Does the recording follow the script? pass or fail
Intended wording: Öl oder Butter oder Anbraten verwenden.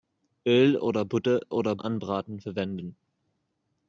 pass